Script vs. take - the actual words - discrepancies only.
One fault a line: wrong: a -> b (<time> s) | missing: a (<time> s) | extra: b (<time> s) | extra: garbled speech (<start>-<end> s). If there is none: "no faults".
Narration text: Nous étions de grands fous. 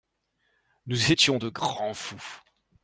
no faults